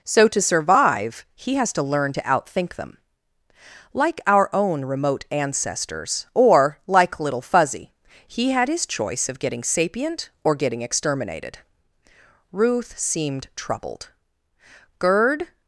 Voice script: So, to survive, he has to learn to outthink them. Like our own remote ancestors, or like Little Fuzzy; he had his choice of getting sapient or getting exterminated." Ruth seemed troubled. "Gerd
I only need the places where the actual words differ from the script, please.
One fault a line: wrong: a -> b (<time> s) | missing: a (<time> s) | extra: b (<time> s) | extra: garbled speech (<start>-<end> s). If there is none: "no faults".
no faults